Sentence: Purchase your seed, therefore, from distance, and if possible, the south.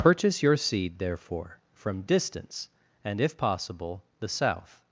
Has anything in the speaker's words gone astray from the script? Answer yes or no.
no